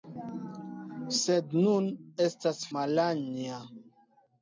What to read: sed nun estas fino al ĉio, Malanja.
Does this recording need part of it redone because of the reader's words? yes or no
yes